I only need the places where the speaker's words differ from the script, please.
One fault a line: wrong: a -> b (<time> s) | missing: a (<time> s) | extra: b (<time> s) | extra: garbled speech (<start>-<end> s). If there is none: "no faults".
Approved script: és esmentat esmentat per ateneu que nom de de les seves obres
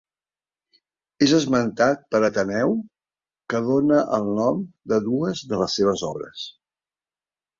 missing: esmentat (2.0 s)
extra: dóna el (3.7 s)
extra: dues (5.1 s)